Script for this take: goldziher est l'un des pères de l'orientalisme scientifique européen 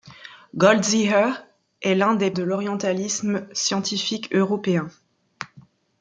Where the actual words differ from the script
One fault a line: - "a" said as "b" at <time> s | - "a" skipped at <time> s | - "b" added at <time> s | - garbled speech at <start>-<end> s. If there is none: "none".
- "pères" skipped at 2.3 s